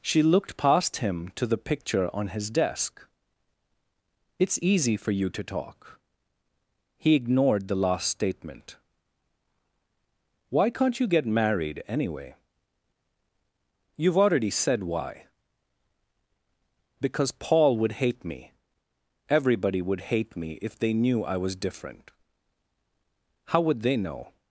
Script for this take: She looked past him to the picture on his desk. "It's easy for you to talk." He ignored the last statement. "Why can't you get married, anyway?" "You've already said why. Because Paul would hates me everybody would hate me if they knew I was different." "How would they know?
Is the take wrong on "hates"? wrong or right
wrong